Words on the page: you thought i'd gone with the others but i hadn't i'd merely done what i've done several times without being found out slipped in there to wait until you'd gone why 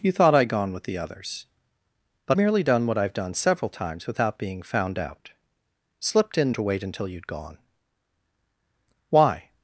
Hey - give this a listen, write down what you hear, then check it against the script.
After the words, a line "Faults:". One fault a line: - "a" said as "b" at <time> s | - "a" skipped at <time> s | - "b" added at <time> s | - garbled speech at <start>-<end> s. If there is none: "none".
you thought i'd gone with the others but merely done what i've done several times without being found out slipped in to wait until you'd gone why
Faults:
- "i hadn't i'd" skipped at 2.4 s
- "there" skipped at 6.5 s